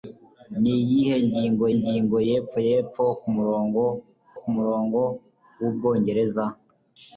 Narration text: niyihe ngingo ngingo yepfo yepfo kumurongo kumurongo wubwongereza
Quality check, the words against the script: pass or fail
pass